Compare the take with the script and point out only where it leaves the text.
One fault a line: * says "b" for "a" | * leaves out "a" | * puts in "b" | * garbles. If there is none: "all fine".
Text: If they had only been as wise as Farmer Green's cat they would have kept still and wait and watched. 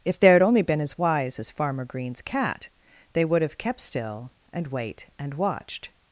all fine